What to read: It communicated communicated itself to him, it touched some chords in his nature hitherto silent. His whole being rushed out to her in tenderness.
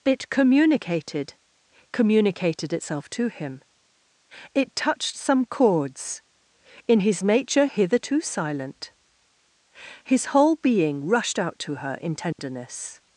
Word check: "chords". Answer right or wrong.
right